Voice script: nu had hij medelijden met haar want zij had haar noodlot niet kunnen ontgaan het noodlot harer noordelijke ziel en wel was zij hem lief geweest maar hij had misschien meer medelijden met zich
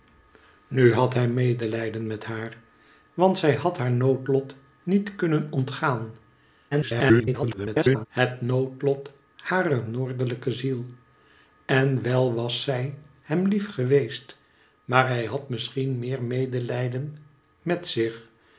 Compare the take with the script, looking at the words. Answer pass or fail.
fail